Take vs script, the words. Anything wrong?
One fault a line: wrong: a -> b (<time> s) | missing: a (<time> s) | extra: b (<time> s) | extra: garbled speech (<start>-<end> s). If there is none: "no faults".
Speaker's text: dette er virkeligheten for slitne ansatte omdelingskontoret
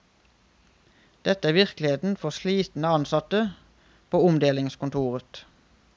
extra: på (4.1 s)